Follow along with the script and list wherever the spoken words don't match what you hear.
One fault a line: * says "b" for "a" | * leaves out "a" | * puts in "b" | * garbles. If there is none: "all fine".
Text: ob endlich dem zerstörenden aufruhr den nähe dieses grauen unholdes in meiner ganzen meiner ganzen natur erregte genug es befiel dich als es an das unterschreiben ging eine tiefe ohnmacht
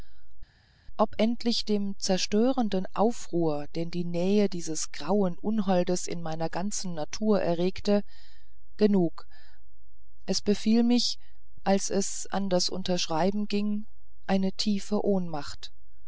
* puts in "die"
* leaves out "meiner ganzen"
* says "mich" for "dich"